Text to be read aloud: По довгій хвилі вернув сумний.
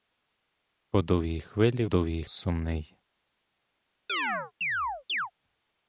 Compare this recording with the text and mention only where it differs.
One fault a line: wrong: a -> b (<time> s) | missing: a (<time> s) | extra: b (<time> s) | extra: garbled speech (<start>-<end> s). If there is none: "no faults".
wrong: вернув -> довгій (1.8 s)